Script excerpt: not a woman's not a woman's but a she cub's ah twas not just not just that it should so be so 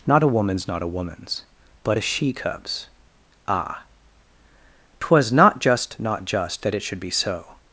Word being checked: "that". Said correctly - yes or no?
yes